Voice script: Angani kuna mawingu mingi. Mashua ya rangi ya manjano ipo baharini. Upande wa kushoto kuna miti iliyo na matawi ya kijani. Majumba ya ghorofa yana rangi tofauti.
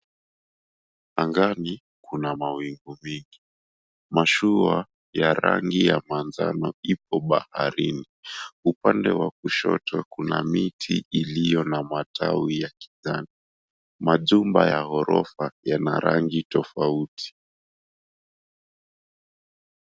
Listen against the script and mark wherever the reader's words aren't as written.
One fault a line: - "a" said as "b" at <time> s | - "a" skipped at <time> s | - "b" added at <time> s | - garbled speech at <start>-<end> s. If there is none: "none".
none